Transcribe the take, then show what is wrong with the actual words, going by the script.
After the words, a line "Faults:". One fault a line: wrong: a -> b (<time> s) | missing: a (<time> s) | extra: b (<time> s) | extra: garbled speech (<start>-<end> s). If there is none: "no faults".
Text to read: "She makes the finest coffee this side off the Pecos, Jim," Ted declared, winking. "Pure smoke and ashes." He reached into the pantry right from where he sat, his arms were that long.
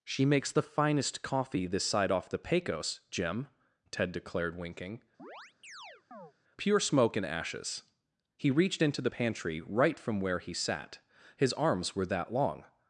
"She makes the finest coffee this side off the Pecos, Jim," Ted declared, winking. "Pure smoke and ashes." He reached into the pantry right from where he sat, his arms were that long.
Faults:
no faults